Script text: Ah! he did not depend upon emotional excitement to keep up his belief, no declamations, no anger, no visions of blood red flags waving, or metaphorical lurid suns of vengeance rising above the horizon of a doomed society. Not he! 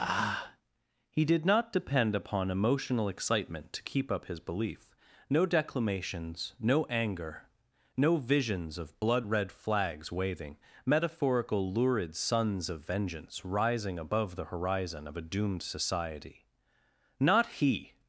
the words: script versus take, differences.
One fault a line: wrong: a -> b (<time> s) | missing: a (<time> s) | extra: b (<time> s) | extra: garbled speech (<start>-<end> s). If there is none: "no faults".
missing: or (10.6 s)